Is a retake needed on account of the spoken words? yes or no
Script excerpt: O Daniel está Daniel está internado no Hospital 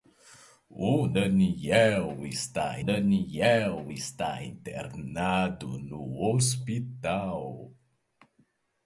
no